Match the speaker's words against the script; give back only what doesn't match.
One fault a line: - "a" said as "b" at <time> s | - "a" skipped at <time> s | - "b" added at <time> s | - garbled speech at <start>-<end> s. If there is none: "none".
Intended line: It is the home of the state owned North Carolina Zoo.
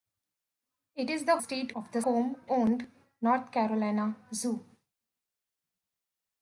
- "home" said as "state" at 1.4 s
- "state" said as "home" at 2.0 s